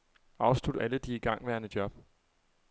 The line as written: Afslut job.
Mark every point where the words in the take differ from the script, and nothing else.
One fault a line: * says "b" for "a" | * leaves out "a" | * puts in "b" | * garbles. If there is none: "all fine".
* puts in "alle de igangværende"